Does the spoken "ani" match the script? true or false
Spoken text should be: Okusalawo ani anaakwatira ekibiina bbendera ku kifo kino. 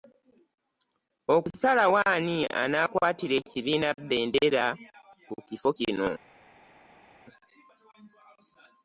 true